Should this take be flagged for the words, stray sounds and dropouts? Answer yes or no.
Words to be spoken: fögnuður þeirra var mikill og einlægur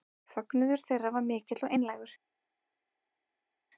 no